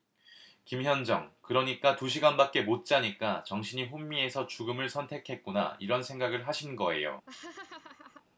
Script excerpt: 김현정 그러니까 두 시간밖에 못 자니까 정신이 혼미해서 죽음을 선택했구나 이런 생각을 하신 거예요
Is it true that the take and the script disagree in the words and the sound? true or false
true